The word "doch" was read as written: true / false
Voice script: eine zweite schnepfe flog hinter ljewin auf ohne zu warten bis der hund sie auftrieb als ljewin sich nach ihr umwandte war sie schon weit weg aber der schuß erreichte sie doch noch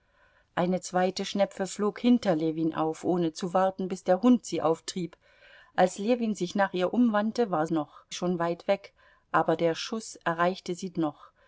false